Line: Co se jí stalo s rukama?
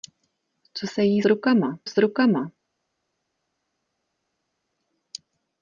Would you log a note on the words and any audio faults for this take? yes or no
yes